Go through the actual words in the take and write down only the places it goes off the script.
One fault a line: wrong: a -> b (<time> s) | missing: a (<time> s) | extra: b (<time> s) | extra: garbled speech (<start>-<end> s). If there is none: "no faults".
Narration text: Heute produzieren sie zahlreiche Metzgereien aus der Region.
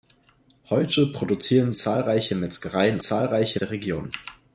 missing: sie (1.7 s)
wrong: aus -> zahlreiche (3.0 s)